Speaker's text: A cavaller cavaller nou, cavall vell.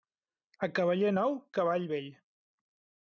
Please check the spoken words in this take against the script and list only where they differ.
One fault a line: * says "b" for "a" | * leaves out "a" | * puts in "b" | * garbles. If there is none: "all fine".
* leaves out "cavaller"